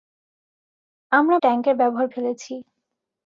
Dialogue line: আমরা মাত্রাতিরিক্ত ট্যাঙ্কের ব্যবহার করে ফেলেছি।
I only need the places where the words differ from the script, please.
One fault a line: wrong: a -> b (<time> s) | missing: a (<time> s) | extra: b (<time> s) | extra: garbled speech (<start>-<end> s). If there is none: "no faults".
missing: মাত্রাতিরিক্ত (1.4 s)
missing: করে (2.1 s)